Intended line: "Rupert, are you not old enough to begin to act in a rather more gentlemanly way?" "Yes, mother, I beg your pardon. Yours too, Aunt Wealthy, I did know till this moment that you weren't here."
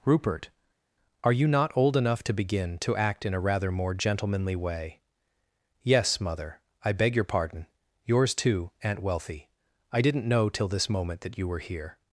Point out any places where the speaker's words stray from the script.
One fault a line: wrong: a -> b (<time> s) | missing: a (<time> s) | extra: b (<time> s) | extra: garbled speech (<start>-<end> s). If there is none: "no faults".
wrong: did -> didn't (10.0 s)
wrong: weren't -> were (11.5 s)